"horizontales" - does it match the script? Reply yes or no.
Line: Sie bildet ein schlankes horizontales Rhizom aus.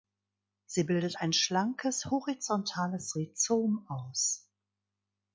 yes